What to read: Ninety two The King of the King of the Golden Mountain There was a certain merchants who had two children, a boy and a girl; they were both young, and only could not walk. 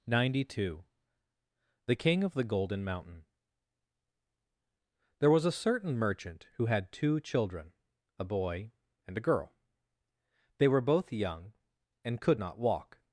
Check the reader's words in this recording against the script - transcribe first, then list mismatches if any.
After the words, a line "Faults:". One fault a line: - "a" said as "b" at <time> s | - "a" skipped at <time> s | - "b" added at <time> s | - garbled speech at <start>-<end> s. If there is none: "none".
Ninety two The King of the Golden Mountain There was a certain merchant who had two children, a boy and a girl; they were both young, and could not walk.
Faults:
- "King of the" skipped at 2.4 s
- "merchants" said as "merchant" at 5.9 s
- "only" skipped at 12.2 s